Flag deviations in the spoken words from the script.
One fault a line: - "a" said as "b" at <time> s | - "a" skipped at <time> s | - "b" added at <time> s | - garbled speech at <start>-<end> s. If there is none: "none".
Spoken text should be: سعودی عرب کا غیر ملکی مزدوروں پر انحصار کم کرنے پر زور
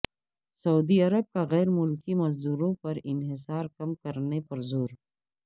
none